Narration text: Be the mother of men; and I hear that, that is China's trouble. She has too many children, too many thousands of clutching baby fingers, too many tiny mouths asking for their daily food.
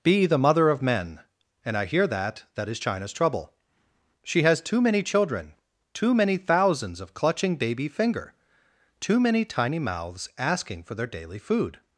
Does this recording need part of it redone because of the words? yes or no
yes